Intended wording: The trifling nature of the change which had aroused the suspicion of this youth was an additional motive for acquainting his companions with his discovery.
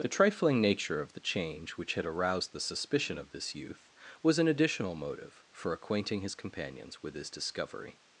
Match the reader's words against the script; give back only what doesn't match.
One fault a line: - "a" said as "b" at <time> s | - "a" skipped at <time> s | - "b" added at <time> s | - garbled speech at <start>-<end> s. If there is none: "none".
none